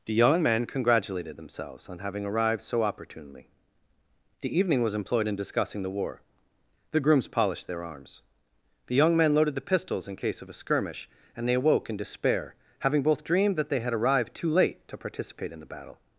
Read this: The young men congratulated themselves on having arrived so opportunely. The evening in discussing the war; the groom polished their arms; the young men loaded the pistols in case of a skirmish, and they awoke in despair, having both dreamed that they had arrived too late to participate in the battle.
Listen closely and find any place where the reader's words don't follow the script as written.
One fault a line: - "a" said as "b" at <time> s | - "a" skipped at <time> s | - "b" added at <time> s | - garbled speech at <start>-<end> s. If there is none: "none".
- "was employed" added at 4.8 s
- "groom" said as "grooms" at 7.0 s